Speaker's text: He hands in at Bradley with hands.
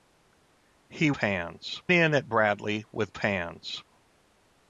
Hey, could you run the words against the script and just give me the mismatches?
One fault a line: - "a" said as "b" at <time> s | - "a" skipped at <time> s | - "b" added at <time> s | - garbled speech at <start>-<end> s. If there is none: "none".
none